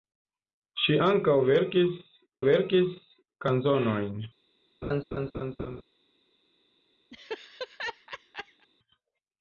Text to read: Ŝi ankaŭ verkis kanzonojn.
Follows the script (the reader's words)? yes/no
no